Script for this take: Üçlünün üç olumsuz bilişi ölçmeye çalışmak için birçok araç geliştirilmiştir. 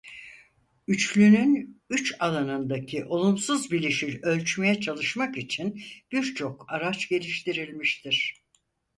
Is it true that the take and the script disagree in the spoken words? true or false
true